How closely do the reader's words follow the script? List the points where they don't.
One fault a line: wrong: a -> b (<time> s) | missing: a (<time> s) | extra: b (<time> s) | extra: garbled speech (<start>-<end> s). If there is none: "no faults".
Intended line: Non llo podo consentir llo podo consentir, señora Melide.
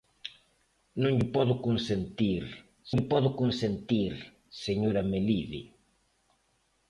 no faults